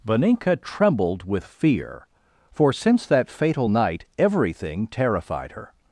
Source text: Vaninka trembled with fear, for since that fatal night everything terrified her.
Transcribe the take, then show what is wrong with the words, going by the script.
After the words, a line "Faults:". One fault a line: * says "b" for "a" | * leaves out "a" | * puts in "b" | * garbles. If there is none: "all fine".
Vaninka trembled with fear, for since that fatal night everything terrified her.
Faults:
all fine